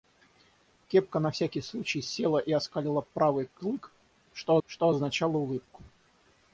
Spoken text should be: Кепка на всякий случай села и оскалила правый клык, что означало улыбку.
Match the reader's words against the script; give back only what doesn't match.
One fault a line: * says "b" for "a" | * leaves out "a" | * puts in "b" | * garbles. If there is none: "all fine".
* puts in "что"